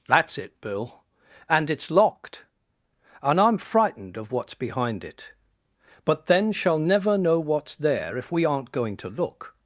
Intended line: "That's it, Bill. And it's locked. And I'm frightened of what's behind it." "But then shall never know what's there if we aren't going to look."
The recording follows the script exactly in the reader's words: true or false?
true